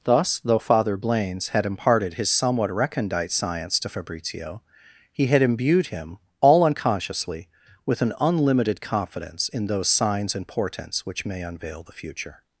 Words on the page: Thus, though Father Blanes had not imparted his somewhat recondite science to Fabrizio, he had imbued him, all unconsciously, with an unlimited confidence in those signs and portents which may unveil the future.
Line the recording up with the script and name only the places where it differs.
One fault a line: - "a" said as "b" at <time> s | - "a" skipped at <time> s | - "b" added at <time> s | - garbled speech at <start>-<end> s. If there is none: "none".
- "not" skipped at 1.6 s